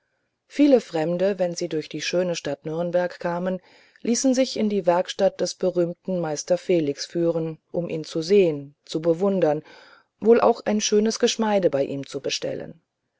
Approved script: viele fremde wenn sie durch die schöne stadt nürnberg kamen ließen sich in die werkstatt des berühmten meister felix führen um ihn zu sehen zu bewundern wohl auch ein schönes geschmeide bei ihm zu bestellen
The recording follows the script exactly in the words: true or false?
true